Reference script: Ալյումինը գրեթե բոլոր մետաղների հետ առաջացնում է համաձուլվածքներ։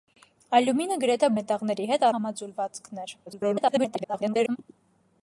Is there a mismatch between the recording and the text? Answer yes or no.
yes